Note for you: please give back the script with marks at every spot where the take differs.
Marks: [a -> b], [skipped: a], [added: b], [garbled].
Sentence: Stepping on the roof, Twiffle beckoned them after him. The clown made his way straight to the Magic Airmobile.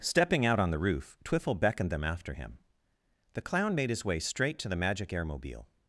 Stepping [added: out] on the roof, Twiffle beckoned them after him. The clown made his way straight to the Magic Airmobile.